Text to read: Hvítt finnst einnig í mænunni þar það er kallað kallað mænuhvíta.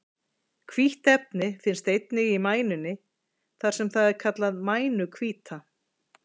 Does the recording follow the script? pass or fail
fail